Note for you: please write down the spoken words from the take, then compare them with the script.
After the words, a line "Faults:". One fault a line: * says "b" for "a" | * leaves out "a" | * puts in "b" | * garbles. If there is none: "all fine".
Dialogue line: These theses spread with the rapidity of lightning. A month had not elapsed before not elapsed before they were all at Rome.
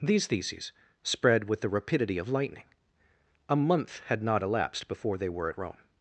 These theses spread with the rapidity of lightning. A month had not elapsed before they were at Rome.
Faults:
* leaves out "not elapsed before"
* leaves out "all"